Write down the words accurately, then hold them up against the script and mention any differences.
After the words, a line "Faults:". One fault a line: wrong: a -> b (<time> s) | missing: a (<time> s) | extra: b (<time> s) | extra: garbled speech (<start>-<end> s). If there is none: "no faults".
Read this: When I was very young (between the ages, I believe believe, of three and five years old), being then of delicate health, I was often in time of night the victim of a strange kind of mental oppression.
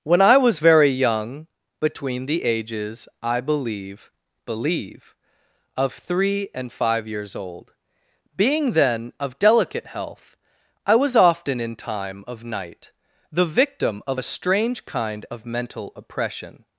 When I was very young (between the ages, I believe believe, of three and five years old), being then of delicate health, I was often in time of night the victim of a strange kind of mental oppression.
Faults:
no faults